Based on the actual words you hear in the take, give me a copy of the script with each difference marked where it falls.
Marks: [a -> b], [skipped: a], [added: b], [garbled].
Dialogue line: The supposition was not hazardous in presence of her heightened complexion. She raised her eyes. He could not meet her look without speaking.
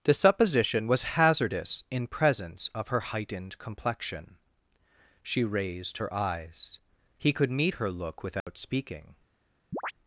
The supposition was [skipped: not] hazardous in presence of her heightened complexion. She raised her eyes. He could [skipped: not] meet her look without speaking.